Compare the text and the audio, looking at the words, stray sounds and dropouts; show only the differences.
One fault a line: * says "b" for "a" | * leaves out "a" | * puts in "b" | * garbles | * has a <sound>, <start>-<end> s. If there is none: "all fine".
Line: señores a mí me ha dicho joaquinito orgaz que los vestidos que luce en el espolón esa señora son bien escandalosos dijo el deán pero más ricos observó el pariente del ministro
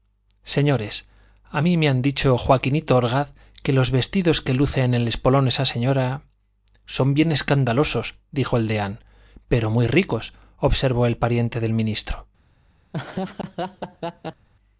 * says "muy" for "más"
* has a laugh, 12.9-14.5 s